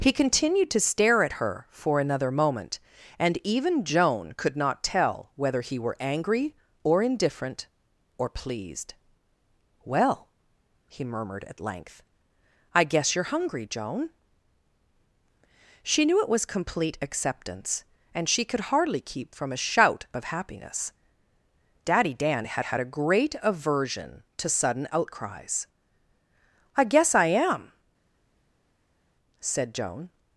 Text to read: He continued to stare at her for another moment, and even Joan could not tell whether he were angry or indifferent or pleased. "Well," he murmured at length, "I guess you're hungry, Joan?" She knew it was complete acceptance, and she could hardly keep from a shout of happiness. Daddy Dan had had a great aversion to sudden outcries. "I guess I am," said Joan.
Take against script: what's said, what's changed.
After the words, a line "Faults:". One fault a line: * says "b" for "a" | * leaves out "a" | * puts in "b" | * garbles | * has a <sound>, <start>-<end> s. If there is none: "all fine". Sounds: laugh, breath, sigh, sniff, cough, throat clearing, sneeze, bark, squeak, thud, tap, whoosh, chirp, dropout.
He continued to stare at her for another moment, and even Joan could not tell whether he were angry or indifferent or pleased. "Well," he murmured at length, "I guess you're hungry, Joan?" She knew it was complete acceptance, and she could hardly keep from a shout of happiness. Daddy Dan had had a great aversion to sudden outcries. "I guess I am," said Joan.
Faults:
all fine